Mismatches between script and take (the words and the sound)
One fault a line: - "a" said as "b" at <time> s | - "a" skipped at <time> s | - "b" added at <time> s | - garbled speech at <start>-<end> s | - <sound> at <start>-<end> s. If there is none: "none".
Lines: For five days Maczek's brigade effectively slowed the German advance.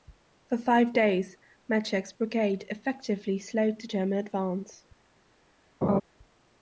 - laugh at 5.8-6.0 s